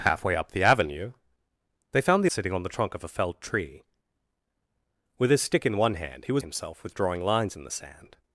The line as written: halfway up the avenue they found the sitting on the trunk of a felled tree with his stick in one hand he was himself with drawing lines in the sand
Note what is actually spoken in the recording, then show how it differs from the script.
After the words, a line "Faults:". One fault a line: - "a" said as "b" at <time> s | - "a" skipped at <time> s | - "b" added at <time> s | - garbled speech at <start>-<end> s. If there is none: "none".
halfway up the avenue they found the sitting on the trunk of a felled tree with his stick in one hand he was himself with drawing lines in the sand
Faults:
none